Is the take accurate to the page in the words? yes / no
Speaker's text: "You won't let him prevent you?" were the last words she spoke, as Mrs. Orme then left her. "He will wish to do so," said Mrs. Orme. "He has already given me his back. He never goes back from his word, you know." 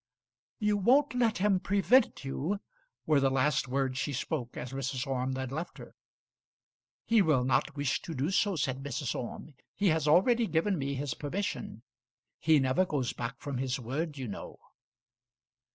no